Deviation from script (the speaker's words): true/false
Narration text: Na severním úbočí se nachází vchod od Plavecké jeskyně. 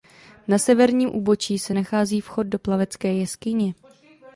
true